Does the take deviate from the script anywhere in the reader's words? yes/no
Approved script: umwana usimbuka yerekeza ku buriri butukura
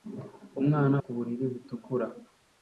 yes